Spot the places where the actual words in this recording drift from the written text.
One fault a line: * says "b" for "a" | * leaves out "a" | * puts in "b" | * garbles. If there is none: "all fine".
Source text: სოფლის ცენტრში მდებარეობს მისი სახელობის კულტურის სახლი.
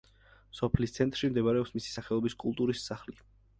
all fine